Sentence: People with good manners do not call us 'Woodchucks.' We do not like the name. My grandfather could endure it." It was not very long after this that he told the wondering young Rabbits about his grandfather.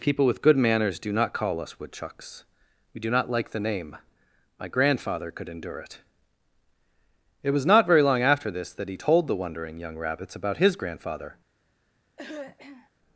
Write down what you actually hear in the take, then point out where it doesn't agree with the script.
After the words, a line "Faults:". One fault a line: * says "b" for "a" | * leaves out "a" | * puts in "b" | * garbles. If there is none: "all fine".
People with good manners do not call us 'Woodchucks.' We do not like the name. My grandfather could endure it." It was not very long after this that he told the wondering young Rabbits about his grandfather.
Faults:
all fine